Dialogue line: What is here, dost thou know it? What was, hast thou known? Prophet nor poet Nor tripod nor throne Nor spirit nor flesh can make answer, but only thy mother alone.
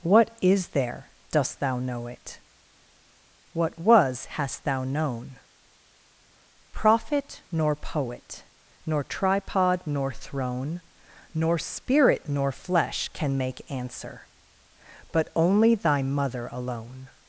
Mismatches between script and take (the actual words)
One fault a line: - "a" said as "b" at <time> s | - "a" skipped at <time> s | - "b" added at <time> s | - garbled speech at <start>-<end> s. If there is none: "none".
- "here" said as "there" at 0.7 s